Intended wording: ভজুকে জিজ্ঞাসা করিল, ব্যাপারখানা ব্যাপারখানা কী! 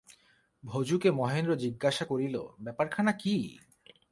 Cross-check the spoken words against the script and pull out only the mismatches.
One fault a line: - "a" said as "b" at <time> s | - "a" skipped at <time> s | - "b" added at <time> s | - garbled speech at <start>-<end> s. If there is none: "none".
- "মহেন্দ্র" added at 1.1 s
- "ব্যাপারখানা" skipped at 3.1 s